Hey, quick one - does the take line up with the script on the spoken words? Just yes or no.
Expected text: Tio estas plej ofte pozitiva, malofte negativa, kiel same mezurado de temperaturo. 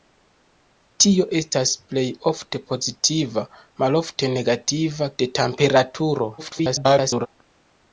no